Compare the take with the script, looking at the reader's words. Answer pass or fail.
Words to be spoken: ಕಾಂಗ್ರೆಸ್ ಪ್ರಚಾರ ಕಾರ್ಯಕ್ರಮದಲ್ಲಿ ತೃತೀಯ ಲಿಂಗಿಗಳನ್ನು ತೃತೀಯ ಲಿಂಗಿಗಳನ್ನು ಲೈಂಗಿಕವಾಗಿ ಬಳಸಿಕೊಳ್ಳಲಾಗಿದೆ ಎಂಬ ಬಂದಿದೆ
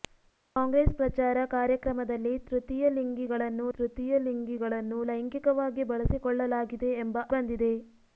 pass